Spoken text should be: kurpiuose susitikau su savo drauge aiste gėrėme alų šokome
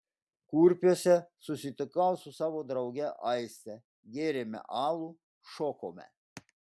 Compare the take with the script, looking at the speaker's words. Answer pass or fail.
pass